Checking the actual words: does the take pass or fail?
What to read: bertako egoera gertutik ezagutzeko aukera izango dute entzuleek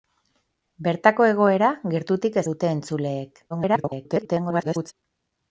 fail